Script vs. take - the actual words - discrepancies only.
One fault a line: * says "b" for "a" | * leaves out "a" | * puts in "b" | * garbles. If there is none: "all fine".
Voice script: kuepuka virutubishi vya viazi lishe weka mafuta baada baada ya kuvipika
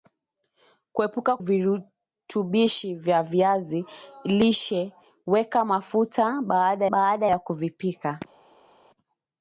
all fine